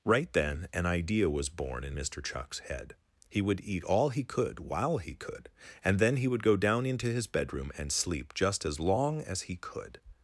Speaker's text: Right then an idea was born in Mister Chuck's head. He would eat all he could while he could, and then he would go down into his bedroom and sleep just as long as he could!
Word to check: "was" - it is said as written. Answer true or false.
true